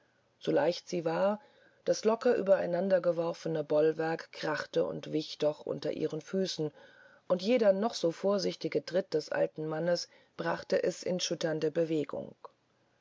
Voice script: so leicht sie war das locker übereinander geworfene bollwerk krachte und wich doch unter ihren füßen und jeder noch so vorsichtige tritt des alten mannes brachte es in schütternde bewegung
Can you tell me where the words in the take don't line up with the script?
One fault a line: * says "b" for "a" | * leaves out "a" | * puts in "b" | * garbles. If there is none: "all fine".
all fine